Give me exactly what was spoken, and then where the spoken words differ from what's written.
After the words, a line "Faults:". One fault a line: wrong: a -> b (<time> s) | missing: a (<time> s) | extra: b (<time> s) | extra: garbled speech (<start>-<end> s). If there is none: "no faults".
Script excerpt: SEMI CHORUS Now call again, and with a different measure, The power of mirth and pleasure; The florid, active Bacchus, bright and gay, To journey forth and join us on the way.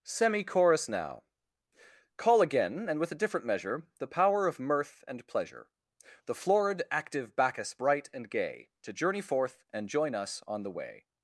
SEMI CHORUS Now call again, and with a different measure, The power of mirth and pleasure; The florid, active Bacchus, bright and gay, To journey forth and join us on the way.
Faults:
no faults